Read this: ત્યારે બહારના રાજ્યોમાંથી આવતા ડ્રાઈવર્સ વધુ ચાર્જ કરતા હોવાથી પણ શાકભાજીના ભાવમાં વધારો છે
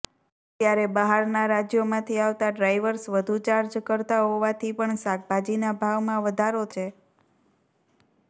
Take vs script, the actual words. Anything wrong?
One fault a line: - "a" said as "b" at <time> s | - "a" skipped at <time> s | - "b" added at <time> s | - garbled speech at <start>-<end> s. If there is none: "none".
none